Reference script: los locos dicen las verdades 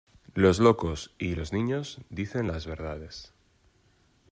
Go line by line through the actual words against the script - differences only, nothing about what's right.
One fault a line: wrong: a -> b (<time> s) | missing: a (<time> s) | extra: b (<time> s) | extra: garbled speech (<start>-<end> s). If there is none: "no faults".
extra: y los niños (1.2 s)